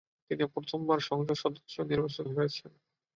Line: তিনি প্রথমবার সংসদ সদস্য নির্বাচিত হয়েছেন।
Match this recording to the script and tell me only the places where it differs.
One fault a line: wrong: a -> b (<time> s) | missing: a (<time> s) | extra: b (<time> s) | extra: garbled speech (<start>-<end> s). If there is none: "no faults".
no faults